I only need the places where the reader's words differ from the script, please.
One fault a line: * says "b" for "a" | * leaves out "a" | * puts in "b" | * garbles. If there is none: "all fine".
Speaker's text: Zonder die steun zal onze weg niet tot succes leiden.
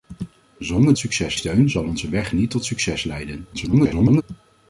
* says "succes" for "die"
* garbles